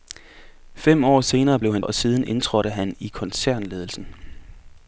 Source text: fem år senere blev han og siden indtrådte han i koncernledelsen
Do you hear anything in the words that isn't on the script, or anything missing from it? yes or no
no